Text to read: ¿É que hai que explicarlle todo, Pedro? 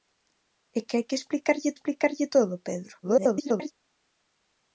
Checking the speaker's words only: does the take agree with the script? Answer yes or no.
no